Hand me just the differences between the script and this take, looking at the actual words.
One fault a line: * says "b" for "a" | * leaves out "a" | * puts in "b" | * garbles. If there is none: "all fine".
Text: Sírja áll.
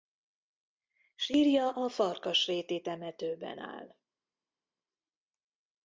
* puts in "a Farkasréti temetőben"